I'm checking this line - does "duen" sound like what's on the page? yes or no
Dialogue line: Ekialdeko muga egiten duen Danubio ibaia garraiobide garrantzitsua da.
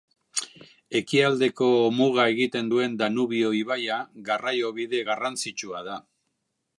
yes